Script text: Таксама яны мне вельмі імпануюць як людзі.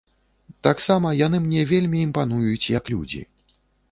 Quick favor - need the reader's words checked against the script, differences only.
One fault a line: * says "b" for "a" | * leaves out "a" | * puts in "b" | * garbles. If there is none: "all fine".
all fine